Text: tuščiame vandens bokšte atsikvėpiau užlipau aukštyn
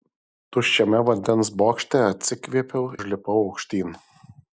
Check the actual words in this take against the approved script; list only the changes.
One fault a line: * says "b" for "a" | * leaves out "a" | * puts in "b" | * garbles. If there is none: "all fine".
all fine